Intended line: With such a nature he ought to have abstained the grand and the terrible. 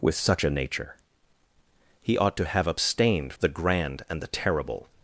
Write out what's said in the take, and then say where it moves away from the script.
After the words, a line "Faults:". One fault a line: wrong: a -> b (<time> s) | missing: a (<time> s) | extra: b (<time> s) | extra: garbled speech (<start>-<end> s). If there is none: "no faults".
With such a nature he ought to have abstained the grand and the terrible.
Faults:
no faults